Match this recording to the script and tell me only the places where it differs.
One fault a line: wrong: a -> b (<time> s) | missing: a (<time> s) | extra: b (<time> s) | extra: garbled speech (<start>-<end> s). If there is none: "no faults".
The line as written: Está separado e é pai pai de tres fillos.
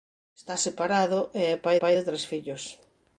no faults